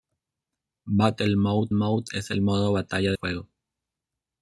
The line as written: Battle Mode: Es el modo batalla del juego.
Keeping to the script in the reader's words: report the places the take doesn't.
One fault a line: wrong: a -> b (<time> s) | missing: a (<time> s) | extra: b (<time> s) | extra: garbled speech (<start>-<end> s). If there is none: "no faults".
extra: Mode (1.7 s)
missing: del (3.1 s)